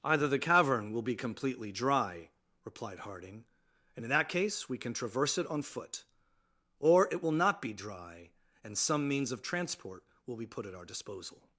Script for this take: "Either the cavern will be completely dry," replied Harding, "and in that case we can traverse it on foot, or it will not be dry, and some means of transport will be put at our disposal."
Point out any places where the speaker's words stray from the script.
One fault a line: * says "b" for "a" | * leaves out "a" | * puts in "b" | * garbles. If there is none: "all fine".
all fine